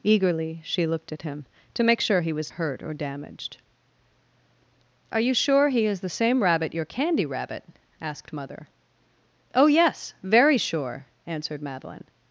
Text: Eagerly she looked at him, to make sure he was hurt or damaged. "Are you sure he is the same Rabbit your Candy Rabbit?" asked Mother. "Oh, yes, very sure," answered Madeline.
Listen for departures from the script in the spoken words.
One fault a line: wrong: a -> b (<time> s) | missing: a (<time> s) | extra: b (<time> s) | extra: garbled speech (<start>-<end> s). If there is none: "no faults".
no faults